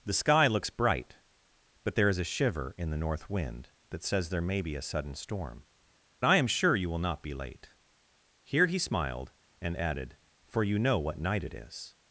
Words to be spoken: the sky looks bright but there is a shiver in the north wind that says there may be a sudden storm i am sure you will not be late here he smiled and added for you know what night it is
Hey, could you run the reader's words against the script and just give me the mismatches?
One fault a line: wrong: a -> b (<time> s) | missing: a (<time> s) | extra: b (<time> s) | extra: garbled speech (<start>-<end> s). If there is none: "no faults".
no faults